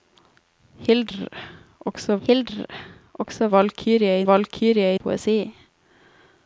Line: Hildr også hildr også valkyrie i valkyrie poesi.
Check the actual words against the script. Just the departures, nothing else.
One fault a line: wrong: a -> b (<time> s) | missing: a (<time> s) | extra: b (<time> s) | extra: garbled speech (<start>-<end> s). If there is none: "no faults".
no faults